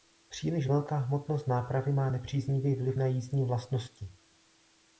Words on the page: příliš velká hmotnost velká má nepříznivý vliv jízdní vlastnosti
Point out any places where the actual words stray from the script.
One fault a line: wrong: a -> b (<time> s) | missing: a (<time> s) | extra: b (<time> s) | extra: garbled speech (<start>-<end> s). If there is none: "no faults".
wrong: velká -> nápravy (1.5 s)
extra: na (2.9 s)